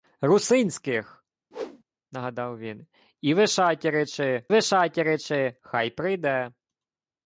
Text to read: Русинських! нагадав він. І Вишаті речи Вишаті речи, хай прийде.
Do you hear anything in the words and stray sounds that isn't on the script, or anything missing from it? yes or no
yes